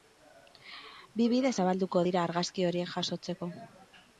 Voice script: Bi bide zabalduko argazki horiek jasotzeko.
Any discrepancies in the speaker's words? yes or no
yes